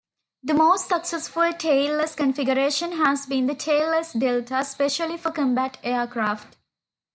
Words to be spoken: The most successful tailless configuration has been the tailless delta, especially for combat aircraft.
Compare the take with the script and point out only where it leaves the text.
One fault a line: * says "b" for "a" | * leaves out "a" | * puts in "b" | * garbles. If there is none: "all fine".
all fine